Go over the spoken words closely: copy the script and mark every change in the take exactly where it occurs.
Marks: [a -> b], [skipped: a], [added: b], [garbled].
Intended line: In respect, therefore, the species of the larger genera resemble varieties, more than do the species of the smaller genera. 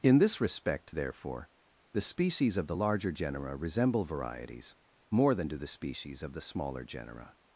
In [added: this] respect, therefore, the species of the larger genera resemble varieties, more than do the species of the smaller genera.